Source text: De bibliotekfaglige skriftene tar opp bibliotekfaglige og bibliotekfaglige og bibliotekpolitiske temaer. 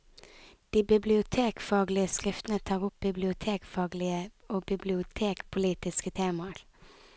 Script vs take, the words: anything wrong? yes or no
yes